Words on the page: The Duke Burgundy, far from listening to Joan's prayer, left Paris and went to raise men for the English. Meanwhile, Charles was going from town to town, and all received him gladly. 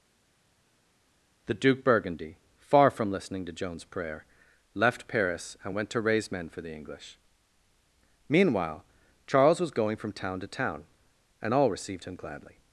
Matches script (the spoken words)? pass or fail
pass